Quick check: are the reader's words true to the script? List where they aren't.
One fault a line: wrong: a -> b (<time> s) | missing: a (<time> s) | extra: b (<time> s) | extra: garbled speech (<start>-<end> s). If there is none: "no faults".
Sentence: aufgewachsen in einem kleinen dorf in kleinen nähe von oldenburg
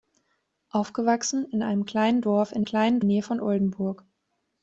no faults